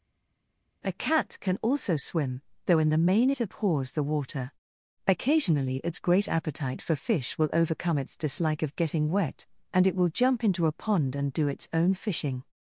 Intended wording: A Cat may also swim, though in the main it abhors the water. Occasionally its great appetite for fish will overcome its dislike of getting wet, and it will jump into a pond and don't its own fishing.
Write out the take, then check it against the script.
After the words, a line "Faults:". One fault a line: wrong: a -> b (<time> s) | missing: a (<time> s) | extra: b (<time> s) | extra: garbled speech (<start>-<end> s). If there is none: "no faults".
A Cat can also swim, though in the main it abhors the water. Occasionally its great appetite for fish will overcome its dislike of getting wet, and it will jump into a pond and do its own fishing.
Faults:
wrong: may -> can (1.4 s)
wrong: don't -> do (11.3 s)